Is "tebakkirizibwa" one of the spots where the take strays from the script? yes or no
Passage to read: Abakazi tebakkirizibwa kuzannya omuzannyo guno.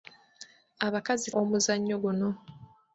yes